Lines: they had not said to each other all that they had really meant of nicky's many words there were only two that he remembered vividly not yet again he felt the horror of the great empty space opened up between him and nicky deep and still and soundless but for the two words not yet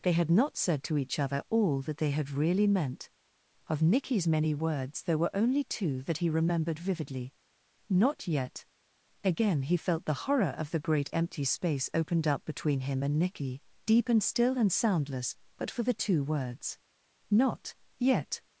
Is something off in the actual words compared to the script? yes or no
no